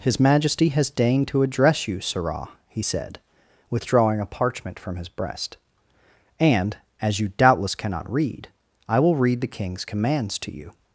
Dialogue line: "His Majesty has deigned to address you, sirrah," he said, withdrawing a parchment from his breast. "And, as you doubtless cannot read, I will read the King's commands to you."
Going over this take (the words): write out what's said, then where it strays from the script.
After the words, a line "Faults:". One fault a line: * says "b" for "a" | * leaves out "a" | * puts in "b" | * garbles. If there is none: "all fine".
"His Majesty has deigned to address you, sirrah," he said, withdrawing a parchment from his breast. "And, as you doubtless cannot read, I will read the King's commands to you."
Faults:
all fine